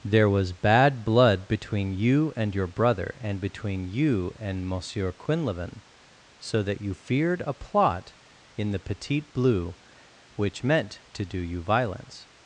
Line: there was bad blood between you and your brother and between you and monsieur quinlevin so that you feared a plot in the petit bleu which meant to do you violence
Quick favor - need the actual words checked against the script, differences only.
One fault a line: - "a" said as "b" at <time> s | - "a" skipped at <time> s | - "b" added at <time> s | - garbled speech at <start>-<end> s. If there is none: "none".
none